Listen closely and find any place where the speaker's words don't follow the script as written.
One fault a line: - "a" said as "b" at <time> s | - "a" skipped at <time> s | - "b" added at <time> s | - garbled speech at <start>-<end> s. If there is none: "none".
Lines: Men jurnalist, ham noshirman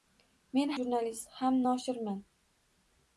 none